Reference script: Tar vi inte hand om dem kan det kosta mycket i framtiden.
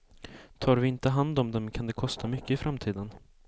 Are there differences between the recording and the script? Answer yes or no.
no